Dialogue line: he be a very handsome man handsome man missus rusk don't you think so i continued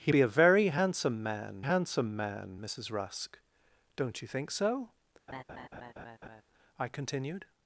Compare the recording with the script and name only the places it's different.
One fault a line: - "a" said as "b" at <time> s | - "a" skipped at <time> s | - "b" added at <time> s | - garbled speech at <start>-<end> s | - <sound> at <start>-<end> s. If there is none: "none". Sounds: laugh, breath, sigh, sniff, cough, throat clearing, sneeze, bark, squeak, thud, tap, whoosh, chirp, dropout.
- laugh at 5.3-6.4 s